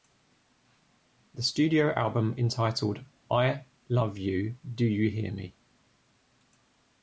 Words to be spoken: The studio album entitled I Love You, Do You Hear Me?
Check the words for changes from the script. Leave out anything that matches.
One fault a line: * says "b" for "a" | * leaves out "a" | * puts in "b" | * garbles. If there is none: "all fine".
all fine